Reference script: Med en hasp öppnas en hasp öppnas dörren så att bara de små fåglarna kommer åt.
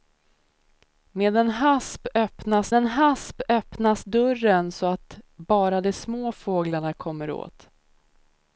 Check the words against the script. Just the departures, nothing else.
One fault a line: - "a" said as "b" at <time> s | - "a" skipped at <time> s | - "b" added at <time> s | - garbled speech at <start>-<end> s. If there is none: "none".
none